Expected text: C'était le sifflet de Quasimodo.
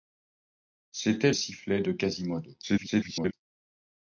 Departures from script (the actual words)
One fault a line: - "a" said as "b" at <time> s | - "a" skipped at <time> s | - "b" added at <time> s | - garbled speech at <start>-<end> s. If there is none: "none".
- "le" skipped at 1.3 s
- garbled speech at 2.6-3.3 s